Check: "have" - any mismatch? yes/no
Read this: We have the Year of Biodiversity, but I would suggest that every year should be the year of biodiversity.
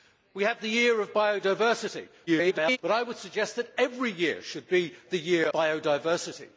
no